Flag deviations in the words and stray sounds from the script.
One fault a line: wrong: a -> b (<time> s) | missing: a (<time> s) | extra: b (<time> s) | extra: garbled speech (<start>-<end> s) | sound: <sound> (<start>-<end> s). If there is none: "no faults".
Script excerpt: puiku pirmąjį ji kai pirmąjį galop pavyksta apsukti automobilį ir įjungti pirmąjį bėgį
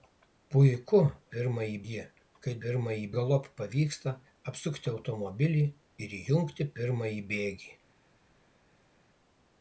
no faults